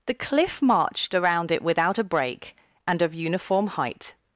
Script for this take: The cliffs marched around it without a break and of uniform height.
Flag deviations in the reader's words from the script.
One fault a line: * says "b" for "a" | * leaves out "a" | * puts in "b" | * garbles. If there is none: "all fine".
* says "cliff" for "cliffs"